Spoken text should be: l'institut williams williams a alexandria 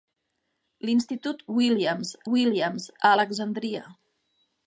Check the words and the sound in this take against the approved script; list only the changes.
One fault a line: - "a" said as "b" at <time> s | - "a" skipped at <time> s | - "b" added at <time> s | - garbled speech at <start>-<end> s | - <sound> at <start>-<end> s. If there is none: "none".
none